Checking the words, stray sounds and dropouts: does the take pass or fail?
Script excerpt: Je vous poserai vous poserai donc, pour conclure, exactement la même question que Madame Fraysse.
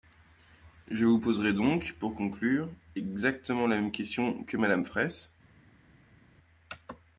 fail